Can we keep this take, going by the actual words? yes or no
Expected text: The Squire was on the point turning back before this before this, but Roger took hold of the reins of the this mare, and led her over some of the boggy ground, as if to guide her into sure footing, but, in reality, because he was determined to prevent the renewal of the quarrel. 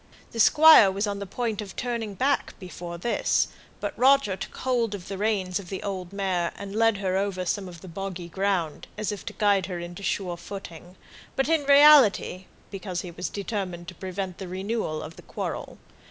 no